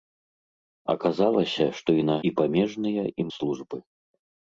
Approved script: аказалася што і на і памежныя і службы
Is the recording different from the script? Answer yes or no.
no